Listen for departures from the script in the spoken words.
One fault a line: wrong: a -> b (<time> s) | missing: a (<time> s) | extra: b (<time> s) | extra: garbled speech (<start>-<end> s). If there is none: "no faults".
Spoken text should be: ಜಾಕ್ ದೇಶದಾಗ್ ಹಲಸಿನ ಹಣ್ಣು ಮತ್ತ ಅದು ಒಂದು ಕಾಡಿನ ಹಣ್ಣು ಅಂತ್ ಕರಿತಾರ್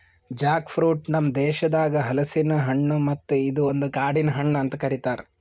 extra: ಫ್ರೂಟ್ ನಮ್ (0.7 s)
wrong: ಅದು -> ಇದು (3.4 s)